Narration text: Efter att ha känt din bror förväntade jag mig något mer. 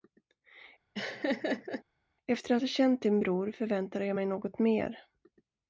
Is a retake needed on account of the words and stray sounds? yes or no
yes